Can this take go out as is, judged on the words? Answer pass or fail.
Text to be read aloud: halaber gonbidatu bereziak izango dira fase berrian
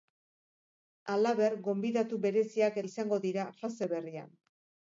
pass